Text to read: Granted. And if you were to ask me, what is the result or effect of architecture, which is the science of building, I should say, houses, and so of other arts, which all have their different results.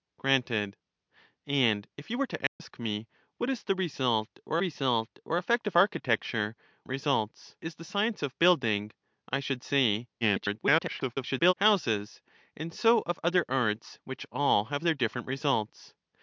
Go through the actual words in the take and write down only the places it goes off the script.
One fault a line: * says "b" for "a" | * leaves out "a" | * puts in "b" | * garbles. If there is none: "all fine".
* puts in "result or"
* says "results" for "which"
* garbles